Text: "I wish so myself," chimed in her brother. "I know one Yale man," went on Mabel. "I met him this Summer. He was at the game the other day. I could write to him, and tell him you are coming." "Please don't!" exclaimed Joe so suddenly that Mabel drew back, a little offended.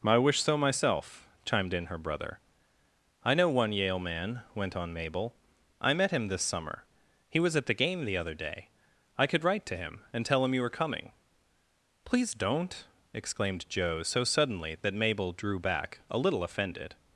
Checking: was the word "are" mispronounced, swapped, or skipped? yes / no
yes